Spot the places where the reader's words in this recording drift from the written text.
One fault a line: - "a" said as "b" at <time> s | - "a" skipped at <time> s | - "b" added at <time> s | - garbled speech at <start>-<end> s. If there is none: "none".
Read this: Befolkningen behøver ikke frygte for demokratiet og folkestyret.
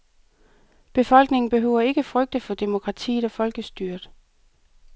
none